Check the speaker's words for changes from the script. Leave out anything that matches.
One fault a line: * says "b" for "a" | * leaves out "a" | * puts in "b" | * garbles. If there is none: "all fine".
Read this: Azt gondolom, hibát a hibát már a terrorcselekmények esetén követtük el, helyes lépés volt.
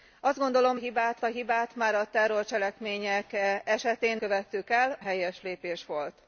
all fine